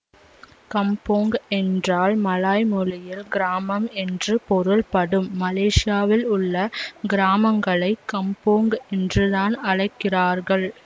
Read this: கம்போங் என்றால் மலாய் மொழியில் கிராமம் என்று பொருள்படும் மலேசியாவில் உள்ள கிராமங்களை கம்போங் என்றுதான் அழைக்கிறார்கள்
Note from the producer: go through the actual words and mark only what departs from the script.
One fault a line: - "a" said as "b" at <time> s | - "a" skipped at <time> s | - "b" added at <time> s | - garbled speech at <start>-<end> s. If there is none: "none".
none